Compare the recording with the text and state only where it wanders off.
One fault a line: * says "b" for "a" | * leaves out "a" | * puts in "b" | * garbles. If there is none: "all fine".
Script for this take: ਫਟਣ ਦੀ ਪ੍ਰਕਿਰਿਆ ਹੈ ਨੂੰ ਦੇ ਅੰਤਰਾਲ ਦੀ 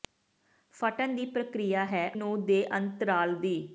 all fine